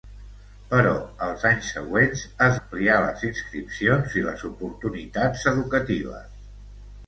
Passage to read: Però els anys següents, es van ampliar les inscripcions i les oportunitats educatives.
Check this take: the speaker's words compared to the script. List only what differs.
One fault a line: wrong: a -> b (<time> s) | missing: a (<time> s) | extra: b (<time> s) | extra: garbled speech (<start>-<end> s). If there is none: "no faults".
missing: van (2.6 s)